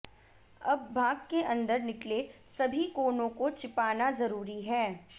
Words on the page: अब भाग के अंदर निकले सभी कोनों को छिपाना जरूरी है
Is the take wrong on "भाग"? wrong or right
right